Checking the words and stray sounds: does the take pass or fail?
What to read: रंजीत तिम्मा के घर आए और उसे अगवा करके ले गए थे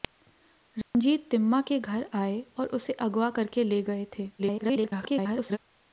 fail